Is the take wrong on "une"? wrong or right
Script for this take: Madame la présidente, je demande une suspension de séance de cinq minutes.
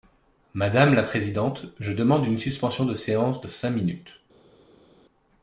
right